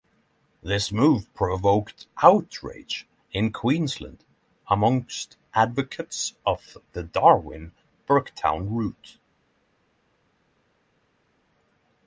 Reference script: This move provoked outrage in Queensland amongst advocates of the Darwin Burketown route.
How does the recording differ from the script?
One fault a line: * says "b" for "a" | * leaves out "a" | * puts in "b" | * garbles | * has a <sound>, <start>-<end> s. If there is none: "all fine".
all fine